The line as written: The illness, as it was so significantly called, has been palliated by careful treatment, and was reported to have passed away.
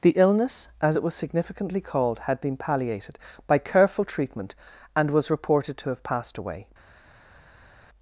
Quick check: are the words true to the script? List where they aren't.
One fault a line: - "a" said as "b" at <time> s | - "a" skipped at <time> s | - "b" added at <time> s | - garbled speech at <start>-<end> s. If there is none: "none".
- "so" skipped at 1.1 s
- "has" said as "had" at 2.2 s